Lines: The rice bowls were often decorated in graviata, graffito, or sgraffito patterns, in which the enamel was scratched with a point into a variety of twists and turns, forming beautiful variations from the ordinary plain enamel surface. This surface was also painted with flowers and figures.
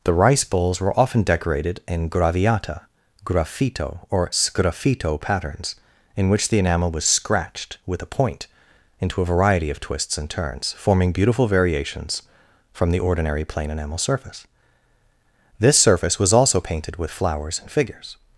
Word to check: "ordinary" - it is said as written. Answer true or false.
true